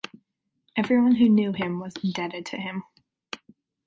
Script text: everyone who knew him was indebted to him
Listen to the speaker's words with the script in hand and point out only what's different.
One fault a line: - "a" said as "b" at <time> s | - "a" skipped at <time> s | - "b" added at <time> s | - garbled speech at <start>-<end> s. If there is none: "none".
none